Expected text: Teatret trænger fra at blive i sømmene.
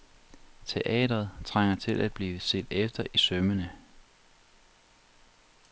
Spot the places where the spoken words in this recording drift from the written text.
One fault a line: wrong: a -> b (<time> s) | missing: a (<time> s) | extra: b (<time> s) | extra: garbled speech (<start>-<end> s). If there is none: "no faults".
wrong: fra -> til (1.8 s)
extra: set efter (2.4 s)